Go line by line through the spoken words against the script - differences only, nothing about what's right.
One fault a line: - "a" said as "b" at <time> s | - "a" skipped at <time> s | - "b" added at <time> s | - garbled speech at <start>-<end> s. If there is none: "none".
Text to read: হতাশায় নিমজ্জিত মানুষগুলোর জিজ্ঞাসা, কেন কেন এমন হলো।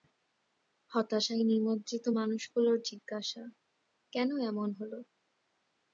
- "কেন" skipped at 4.3 s